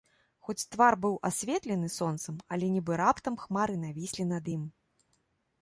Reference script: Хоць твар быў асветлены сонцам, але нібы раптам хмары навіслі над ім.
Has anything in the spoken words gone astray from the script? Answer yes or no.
no